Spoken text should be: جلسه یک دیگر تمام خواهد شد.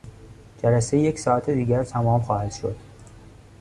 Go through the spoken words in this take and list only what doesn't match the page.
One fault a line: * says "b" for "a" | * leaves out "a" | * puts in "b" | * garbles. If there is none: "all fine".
* puts in "ساعت"